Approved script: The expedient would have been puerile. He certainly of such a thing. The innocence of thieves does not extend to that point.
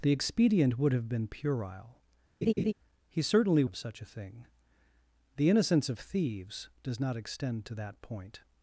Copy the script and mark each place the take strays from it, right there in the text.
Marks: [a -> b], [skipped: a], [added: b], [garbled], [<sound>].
The expedient would have been puerile. [laugh] He certainly of such a thing. The innocence of thieves does not extend to that point.